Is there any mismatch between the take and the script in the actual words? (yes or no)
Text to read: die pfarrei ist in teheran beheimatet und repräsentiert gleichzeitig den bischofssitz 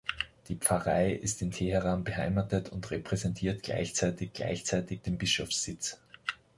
yes